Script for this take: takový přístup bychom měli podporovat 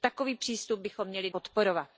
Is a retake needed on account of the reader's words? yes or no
no